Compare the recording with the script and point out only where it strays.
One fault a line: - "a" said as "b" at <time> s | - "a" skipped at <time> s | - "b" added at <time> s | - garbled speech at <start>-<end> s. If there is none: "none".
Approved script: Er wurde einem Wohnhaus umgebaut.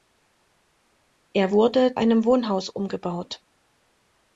none